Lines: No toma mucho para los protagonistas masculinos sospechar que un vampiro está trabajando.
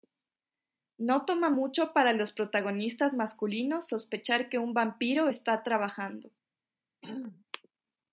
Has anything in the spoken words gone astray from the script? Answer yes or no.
no